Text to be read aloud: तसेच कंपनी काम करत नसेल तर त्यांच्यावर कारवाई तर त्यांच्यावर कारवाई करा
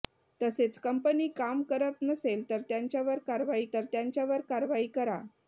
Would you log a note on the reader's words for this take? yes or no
no